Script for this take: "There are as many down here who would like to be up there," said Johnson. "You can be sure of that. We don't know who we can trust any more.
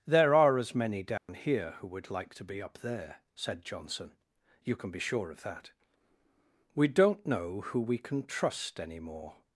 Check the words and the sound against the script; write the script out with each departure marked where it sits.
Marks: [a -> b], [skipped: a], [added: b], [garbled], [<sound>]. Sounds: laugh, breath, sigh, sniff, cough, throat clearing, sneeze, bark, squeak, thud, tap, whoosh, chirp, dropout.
"There are as many down [dropout] here who would like to be up there," said Johnson. "You can be sure of that. We don't know who we can trust any more.